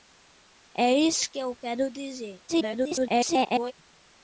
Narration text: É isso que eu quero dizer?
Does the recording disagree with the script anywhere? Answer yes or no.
yes